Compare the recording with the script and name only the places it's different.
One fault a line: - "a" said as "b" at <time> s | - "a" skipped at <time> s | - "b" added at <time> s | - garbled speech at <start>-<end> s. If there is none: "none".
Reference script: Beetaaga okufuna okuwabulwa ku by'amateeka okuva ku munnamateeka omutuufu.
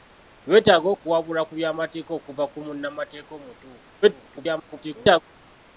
- "okufuna" skipped at 0.9 s
- garbled speech at 4.0-5.2 s